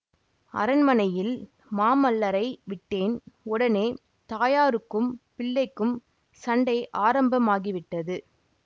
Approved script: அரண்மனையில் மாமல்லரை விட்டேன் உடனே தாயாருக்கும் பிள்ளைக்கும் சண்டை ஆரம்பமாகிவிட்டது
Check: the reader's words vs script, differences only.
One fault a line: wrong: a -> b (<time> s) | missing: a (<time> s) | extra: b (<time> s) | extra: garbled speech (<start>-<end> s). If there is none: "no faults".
no faults